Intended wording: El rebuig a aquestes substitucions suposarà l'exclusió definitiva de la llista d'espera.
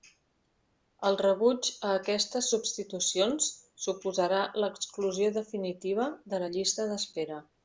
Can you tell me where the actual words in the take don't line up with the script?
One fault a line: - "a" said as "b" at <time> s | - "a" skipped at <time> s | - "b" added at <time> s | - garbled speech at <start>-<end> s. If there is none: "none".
none